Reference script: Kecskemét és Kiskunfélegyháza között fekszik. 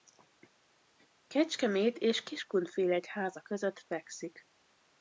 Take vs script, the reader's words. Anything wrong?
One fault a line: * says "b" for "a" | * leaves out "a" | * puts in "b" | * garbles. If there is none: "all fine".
all fine